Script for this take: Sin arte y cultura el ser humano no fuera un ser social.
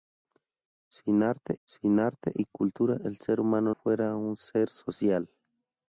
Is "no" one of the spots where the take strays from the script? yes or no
yes